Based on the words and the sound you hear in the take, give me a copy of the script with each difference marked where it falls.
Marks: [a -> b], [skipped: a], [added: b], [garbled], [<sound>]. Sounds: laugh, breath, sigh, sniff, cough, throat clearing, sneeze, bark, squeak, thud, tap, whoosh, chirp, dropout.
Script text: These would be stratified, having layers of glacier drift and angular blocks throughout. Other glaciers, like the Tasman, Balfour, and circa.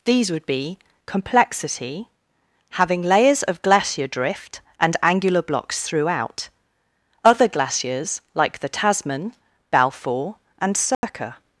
These would be [stratified, -> complexity] having layers of glacier drift and angular blocks throughout. Other glaciers, like the Tasman, Balfour, and circa. [dropout]